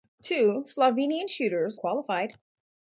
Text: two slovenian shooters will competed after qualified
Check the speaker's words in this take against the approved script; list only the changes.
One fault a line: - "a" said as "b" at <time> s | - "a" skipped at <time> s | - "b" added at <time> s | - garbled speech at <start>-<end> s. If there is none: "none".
- "will competed after" skipped at 1.8 s